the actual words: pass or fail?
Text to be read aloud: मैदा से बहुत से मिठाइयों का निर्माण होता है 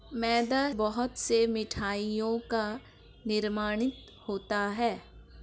fail